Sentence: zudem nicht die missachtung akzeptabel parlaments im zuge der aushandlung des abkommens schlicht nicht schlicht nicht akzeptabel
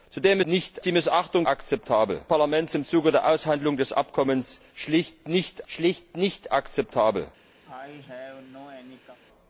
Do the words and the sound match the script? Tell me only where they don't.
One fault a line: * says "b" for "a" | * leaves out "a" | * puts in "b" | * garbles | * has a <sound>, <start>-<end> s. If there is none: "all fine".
* has a cough, 7.6-9.2 s